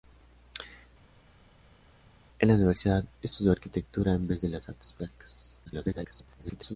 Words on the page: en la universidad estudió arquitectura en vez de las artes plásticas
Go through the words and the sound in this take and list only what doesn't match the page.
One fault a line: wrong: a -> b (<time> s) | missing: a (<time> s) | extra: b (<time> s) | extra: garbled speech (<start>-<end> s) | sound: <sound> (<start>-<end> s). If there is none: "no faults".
extra: garbled speech (5.7-6.8 s)